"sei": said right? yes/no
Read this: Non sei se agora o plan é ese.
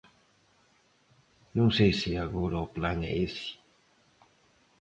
yes